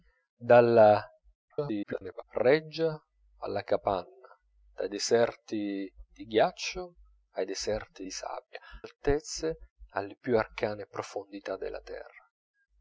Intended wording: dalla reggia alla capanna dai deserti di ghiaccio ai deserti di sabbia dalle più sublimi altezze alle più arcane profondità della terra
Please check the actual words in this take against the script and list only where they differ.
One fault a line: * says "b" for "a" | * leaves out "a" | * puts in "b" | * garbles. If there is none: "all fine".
* garbles
* leaves out "dalle più sublimi"